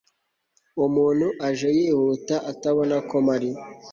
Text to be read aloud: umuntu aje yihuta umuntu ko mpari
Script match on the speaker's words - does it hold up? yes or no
no